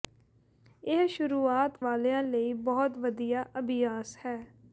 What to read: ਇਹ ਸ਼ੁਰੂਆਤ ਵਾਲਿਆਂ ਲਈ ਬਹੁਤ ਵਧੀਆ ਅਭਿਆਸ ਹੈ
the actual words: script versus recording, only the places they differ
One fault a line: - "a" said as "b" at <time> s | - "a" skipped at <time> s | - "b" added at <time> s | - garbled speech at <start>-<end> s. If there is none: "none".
none